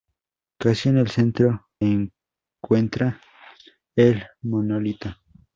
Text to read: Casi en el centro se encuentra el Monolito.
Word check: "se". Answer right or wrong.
wrong